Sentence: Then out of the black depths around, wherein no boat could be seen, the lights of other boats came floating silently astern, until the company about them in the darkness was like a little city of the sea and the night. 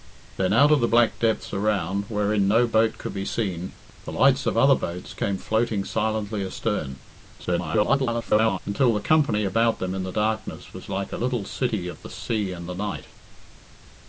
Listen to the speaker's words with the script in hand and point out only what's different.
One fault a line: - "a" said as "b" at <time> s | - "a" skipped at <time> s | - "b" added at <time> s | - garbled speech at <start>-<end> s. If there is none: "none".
- garbled speech at 7.4-8.6 s